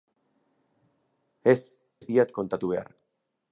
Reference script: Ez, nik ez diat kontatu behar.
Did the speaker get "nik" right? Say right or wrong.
wrong